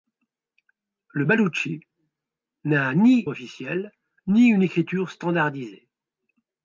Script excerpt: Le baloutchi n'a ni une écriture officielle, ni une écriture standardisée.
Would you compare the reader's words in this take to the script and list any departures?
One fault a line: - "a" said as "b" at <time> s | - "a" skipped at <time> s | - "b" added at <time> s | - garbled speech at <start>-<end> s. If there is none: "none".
- "une écriture" skipped at 3.2 s